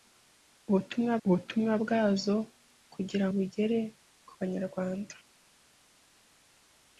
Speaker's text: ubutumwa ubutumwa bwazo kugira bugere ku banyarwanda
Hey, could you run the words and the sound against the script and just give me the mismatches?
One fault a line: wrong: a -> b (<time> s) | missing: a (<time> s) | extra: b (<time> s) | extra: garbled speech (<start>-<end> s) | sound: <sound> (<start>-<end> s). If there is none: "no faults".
no faults